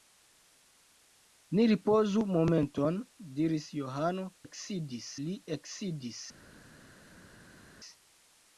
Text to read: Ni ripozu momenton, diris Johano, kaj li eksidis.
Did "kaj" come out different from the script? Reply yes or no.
yes